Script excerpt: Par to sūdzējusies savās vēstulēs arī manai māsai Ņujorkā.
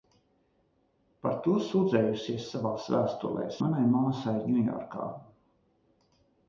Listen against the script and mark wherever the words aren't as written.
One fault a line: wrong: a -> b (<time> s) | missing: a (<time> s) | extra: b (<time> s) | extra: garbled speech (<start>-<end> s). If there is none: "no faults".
missing: arī (3.6 s)